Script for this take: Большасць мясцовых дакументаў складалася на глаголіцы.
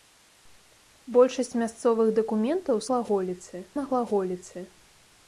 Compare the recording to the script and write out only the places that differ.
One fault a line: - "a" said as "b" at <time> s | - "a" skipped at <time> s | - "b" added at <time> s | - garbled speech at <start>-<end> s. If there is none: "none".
- "складалася" said as "глаголіцы" at 2.9 s